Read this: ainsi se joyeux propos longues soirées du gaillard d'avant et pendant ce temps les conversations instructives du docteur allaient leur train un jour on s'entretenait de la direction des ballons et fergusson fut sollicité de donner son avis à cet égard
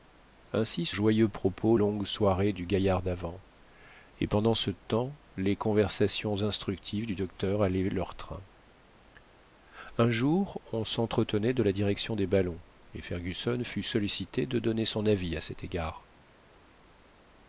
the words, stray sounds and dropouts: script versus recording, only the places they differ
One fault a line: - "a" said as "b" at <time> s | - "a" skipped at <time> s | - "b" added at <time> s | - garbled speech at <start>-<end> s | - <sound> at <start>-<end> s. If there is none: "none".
none